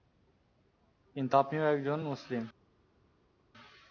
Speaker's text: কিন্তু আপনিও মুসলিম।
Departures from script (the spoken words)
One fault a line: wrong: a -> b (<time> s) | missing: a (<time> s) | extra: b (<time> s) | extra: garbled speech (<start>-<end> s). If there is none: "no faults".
extra: একজন (1.6 s)